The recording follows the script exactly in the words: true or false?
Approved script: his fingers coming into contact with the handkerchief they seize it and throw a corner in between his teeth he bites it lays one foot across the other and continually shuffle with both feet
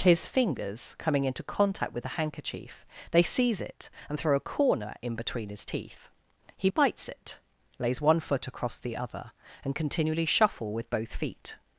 true